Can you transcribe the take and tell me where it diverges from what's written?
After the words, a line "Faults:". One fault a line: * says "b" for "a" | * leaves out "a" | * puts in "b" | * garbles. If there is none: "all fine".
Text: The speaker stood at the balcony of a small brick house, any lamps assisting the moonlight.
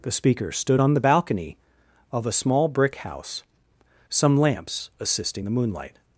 The speaker stood on the balcony of a small brick house, some lamps assisting the moonlight.
Faults:
* says "on" for "at"
* says "some" for "any"